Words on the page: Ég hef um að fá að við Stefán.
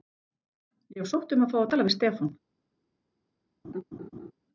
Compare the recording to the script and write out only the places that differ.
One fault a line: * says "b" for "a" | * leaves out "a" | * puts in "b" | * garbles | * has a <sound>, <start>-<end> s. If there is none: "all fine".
* puts in "sótt"
* puts in "tala"
* has a laugh, 3.6-4.3 s